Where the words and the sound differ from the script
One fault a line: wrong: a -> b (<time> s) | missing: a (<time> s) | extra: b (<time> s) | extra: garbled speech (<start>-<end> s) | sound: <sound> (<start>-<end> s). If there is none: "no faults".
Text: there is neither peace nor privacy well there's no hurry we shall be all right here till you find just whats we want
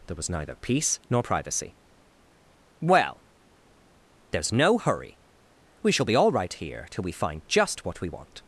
wrong: is -> was (0.1 s)
wrong: you -> we (7.0 s)
wrong: whats -> what (7.9 s)